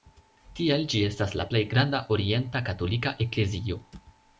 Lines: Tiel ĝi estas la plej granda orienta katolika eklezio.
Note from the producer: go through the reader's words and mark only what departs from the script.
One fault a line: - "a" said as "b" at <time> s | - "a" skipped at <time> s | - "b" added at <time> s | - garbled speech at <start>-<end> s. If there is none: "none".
none